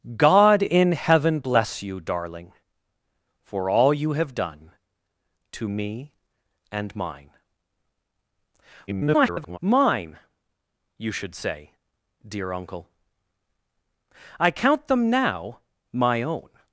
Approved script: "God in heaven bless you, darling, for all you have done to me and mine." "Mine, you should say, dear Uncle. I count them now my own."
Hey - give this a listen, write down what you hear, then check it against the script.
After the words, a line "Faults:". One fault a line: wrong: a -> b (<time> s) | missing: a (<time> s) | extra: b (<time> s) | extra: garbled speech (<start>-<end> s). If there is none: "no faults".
"God in heaven bless you, darling, for all you have done to me and mine." [garbled] "Mine, you should say, dear Uncle. I count them now my own."
Faults:
extra: garbled speech (8.9-9.6 s)